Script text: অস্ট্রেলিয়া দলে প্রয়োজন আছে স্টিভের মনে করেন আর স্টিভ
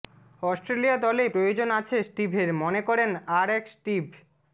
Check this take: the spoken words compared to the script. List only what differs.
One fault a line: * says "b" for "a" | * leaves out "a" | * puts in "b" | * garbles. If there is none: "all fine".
* puts in "এক"